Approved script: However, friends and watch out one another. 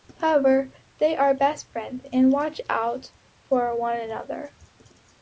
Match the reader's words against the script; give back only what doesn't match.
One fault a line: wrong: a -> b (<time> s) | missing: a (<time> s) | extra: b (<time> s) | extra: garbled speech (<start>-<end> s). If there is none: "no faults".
extra: they are best (1.0 s)
extra: for (3.4 s)